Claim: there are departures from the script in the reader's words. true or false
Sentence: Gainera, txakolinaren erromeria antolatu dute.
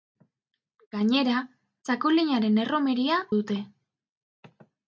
true